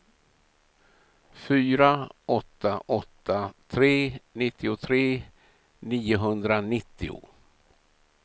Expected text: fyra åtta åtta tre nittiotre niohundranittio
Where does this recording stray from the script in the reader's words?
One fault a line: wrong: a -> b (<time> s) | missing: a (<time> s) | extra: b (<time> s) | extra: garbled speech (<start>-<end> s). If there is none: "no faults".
no faults